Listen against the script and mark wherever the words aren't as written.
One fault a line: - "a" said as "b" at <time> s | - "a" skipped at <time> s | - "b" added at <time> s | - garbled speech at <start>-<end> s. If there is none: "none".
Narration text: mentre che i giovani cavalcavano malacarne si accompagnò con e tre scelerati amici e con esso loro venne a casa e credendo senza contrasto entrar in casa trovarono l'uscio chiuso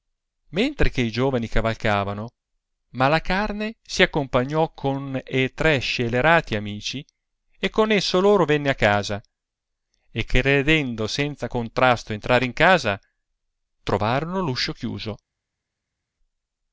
none